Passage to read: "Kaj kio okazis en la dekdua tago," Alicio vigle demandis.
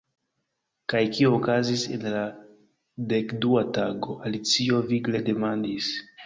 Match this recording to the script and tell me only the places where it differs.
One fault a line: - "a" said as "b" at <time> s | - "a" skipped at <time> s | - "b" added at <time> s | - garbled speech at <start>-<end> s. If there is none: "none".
none